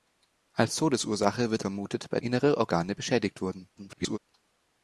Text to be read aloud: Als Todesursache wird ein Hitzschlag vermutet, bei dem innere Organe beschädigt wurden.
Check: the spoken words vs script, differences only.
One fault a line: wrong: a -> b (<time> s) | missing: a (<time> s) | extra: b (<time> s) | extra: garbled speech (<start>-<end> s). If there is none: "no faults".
missing: ein Hitzschlag (1.6 s)
missing: dem (2.2 s)
extra: garbled speech (3.8-4.2 s)